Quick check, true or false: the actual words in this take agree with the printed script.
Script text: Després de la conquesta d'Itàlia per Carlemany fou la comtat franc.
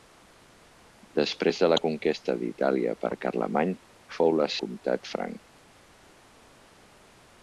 true